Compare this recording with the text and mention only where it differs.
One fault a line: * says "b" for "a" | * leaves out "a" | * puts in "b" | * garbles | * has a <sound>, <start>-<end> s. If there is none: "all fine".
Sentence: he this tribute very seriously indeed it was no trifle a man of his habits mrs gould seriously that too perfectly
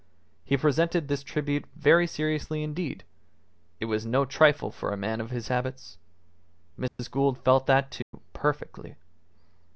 * puts in "presented"
* puts in "for"
* has a dropout, 6.9-7.0 s
* says "felt" for "seriously"
* has a dropout, 8.0-8.1 s